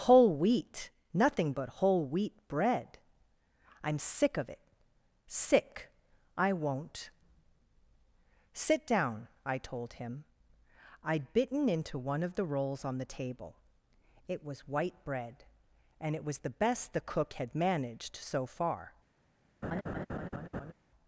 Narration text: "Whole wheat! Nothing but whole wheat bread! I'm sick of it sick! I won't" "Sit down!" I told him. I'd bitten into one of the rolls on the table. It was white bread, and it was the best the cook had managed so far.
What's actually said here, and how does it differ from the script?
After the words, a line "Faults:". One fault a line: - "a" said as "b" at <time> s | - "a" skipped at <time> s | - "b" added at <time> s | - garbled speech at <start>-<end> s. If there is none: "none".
"Whole wheat! Nothing but whole wheat bread! I'm sick of it sick! I won't" "Sit down!" I told him. I'd bitten into one of the rolls on the table. It was white bread, and it was the best the cook had managed so far.
Faults:
none